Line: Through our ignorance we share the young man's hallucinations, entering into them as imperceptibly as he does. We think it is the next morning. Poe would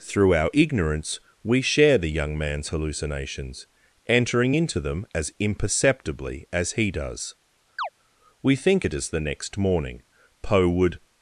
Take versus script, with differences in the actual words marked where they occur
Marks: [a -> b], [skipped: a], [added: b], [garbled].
Through our ignorance we share the young man's hallucinations, entering into them as imperceptibly as he does. We think it is the next morning. Poe would